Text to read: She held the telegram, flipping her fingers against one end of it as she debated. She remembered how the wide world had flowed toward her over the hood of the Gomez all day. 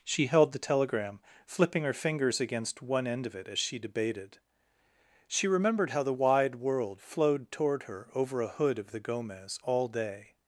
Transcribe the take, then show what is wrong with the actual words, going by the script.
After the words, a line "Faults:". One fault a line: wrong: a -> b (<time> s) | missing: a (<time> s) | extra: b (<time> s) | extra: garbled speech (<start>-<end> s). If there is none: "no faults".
She held the telegram, flipping her fingers against one end of it as she debated. She remembered how the wide world flowed toward her over a hood of the Gomez all day.
Faults:
missing: had (7.0 s)
wrong: the -> a (8.4 s)